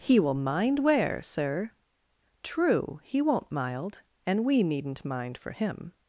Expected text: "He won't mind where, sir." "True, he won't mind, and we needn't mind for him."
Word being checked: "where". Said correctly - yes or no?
yes